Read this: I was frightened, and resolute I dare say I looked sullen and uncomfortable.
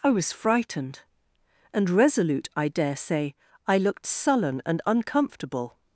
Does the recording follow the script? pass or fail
pass